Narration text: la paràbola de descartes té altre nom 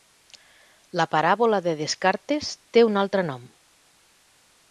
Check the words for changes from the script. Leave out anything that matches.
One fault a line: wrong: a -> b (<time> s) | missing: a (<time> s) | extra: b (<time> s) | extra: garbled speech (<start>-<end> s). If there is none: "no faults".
extra: un (2.9 s)